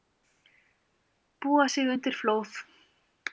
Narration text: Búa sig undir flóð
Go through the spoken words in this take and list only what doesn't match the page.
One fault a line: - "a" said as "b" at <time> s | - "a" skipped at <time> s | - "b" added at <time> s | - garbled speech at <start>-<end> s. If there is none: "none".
none